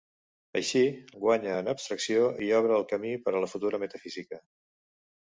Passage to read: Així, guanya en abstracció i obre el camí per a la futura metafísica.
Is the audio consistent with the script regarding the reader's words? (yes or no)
yes